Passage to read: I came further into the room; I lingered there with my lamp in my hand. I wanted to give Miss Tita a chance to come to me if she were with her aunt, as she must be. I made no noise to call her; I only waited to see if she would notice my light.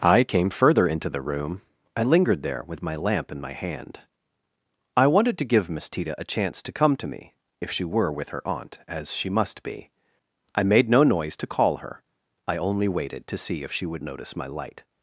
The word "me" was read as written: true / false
true